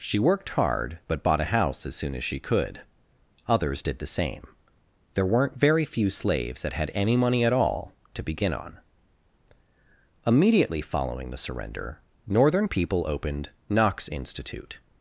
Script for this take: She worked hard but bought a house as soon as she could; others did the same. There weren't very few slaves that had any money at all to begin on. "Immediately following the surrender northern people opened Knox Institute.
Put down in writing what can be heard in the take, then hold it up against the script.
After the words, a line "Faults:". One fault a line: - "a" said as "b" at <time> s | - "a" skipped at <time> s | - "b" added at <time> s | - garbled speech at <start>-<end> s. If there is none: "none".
She worked hard but bought a house as soon as she could; others did the same. There weren't very few slaves that had any money at all to begin on. "Immediately following the surrender northern people opened Knox Institute.
Faults:
none